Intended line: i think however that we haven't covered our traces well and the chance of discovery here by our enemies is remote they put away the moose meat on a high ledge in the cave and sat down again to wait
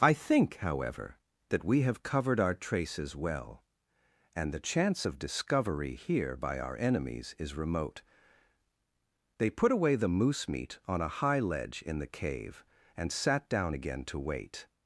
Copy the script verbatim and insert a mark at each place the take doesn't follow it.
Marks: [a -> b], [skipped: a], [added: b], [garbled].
i think however that we [haven't -> have] covered our traces well and the chance of discovery here by our enemies is remote they put away the moose meat on a high ledge in the cave and sat down again to wait